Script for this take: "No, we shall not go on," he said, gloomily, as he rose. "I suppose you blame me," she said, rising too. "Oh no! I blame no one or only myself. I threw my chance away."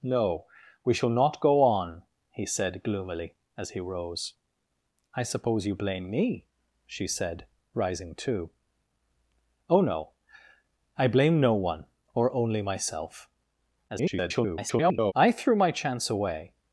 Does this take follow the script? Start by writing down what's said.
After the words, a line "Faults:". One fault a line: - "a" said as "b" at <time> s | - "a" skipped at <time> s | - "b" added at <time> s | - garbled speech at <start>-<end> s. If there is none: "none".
"No, we shall not go on," he said, gloomily, as he rose. "I suppose you blame me," she said, rising too. "Oh no! I blame no one or only myself. [garbled] I threw my chance away."
Faults:
- garbled speech at 13.9-15.1 s